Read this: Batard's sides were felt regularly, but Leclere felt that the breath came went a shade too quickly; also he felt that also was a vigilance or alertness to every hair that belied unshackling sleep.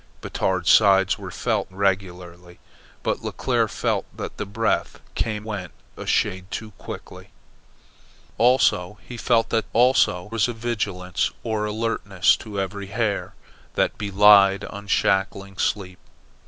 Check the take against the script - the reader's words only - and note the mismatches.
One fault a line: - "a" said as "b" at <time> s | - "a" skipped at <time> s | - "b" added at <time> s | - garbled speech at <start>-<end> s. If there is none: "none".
none